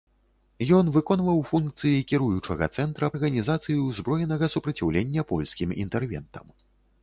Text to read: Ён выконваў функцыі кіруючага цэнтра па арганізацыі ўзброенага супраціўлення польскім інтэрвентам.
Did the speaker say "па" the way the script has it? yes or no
no